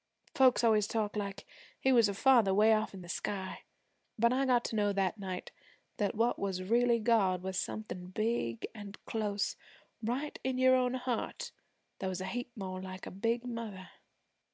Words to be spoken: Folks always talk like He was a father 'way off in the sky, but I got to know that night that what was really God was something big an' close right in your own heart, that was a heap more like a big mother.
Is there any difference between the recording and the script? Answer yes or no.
no